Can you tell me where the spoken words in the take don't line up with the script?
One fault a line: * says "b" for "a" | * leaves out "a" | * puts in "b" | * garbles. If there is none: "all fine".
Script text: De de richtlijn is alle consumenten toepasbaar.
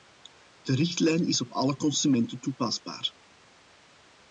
* leaves out "de"
* puts in "op"